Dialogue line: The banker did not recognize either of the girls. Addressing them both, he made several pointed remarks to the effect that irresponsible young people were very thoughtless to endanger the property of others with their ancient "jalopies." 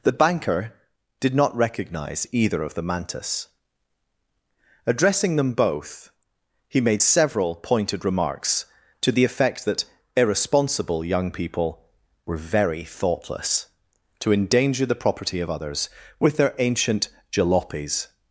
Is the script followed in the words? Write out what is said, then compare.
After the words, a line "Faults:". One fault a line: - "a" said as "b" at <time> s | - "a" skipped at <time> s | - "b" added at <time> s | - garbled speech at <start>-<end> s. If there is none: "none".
The banker did not recognize either of the mantis. Addressing them both, he made several pointed remarks to the effect that irresponsible young people were very thoughtless to endanger the property of others with their ancient "jalopies."
Faults:
- "girls" said as "mantis" at 2.8 s